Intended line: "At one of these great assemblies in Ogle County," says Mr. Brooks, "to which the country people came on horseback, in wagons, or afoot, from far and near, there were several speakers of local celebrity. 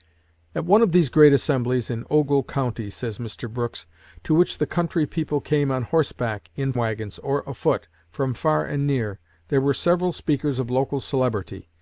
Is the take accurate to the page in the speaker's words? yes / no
yes